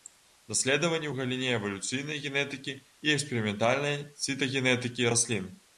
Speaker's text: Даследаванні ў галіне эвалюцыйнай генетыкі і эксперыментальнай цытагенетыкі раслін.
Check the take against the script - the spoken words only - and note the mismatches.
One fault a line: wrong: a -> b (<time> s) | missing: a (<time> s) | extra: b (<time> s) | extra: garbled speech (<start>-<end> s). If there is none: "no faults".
no faults